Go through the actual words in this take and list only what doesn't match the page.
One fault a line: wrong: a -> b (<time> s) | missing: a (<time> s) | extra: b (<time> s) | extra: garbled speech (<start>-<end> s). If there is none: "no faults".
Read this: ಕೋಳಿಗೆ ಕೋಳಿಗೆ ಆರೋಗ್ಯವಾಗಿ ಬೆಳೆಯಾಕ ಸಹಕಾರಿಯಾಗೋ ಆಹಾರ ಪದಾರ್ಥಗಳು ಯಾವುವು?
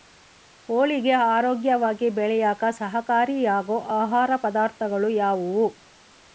missing: ಕೋಳಿಗೆ (1.1 s)